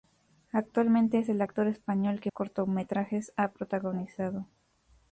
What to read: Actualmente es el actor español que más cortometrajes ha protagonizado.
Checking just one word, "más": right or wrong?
wrong